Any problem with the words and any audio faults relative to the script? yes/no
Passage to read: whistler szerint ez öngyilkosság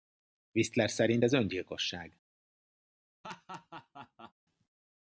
yes